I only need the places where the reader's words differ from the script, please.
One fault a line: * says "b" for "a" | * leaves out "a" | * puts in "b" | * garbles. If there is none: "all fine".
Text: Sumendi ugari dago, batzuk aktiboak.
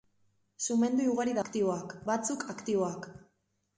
* says "aktiboak" for "dago"